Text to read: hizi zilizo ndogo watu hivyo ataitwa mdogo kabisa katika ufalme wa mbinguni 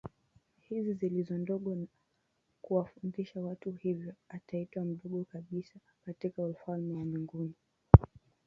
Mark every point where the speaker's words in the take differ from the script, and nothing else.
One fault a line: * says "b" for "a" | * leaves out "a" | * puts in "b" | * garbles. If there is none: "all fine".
* puts in "na kuwafundisha"